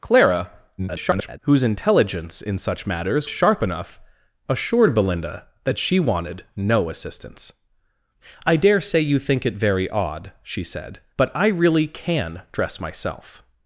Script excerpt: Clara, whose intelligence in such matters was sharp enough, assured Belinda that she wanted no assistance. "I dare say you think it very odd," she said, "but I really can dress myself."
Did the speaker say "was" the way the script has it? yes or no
no